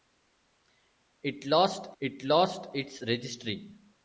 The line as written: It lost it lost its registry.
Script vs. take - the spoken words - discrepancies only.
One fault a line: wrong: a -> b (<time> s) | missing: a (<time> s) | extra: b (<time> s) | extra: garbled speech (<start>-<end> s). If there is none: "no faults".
no faults